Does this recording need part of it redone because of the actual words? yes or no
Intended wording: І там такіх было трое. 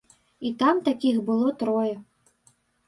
no